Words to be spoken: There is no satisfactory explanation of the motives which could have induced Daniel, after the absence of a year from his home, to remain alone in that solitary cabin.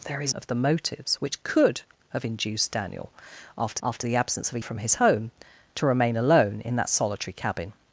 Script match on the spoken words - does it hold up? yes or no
no